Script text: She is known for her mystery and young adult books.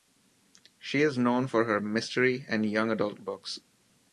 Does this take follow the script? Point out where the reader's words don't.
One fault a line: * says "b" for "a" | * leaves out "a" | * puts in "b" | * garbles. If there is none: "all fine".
all fine